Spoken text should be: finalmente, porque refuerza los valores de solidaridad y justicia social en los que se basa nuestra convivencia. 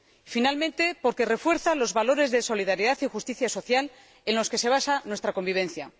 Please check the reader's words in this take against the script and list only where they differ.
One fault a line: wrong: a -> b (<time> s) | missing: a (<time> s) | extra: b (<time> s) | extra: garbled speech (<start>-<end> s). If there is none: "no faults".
no faults